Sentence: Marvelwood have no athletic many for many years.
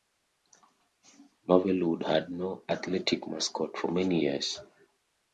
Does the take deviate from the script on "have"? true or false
true